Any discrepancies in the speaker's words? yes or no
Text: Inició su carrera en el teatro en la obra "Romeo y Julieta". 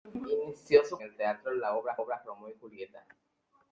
yes